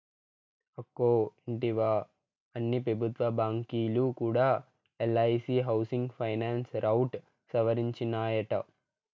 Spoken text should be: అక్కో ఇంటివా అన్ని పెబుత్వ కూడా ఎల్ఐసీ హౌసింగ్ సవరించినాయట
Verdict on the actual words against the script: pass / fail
fail